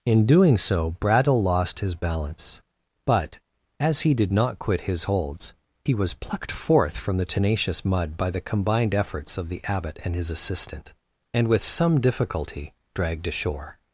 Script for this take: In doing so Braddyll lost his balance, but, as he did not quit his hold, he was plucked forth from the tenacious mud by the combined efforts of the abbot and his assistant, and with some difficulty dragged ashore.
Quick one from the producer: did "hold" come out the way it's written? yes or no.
no